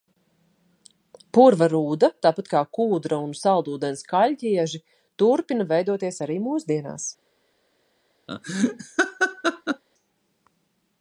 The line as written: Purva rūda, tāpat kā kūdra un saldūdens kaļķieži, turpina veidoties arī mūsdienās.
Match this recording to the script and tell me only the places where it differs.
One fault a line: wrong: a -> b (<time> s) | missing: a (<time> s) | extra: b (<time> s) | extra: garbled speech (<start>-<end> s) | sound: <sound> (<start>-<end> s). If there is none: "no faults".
sound: laugh (8.3-9.8 s)